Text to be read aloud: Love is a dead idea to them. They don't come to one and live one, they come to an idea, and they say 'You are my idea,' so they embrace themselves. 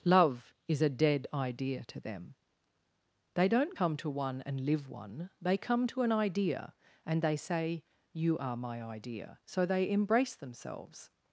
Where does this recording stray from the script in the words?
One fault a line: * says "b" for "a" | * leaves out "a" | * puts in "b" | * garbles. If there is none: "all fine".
all fine